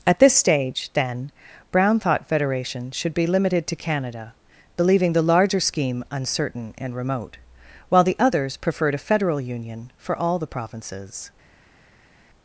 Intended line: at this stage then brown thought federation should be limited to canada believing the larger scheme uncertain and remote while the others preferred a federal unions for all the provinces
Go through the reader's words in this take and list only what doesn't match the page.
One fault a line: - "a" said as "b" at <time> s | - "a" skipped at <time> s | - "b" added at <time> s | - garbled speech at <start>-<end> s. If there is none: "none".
- "unions" said as "union" at 9.4 s